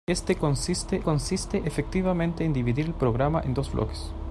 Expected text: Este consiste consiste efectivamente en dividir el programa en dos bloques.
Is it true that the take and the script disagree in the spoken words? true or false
false